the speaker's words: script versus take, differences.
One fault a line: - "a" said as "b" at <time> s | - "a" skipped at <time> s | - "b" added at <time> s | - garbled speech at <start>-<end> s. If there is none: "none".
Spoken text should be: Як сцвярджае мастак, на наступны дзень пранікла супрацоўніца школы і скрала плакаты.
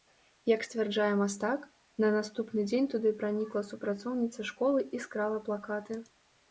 - "туды" added at 3.0 s